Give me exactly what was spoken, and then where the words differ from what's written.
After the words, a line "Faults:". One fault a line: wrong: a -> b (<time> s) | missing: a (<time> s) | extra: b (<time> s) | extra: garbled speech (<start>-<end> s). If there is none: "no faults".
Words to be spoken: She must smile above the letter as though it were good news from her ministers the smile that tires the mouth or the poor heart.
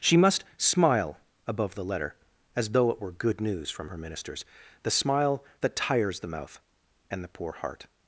She must smile above the letter as though it were good news from her ministers the smile that tires the mouth and the poor heart.
Faults:
wrong: or -> and (7.1 s)